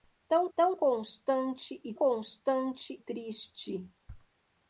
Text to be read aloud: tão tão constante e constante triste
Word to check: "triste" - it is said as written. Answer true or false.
true